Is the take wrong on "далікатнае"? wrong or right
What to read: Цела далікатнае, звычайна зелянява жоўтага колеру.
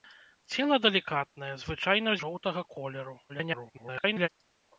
right